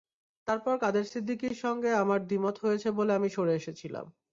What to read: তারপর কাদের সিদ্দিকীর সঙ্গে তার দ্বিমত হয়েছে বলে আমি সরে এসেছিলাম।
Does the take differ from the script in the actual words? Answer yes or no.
yes